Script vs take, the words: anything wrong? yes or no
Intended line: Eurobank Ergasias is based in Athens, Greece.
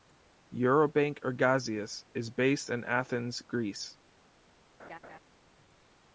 no